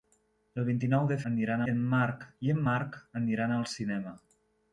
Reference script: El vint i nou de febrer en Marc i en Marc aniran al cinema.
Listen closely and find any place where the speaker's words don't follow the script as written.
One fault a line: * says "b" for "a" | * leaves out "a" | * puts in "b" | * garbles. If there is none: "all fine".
* says "aniran" for "febrer"